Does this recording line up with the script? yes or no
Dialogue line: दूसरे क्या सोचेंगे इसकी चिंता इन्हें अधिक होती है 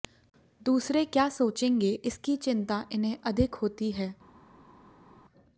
yes